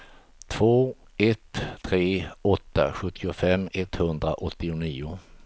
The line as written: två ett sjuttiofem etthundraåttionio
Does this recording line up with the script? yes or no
no